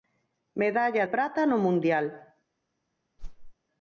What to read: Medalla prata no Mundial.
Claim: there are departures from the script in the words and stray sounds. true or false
true